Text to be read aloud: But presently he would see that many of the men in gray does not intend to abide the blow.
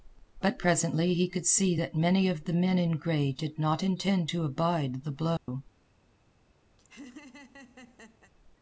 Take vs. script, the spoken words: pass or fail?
fail